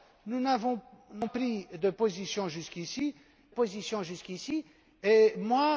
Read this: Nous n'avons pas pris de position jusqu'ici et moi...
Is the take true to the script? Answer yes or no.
no